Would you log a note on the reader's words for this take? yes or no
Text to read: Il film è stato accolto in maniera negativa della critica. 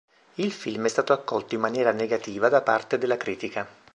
yes